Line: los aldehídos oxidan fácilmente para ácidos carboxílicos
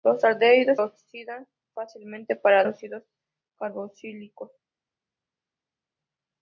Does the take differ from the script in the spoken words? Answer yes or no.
no